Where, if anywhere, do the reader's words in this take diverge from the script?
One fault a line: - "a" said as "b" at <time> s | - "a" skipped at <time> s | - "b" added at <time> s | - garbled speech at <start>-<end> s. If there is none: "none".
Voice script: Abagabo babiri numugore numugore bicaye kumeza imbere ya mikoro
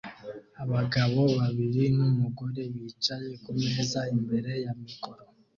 - "numugore" skipped at 2.6 s